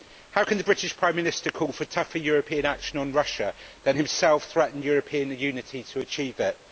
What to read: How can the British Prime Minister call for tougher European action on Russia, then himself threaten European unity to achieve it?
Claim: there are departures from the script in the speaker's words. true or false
false